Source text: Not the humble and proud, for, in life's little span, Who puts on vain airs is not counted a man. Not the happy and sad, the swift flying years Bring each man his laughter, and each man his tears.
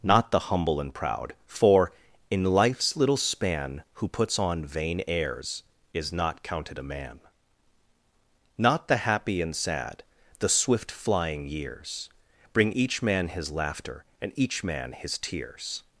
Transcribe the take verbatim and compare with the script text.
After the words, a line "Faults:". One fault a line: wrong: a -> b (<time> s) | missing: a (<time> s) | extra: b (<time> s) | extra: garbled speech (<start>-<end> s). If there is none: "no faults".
Not the humble and proud, for, in life's little span, Who puts on vain airs is not counted a man. Not the happy and sad, the swift flying years Bring each man his laughter, and each man his tears.
Faults:
no faults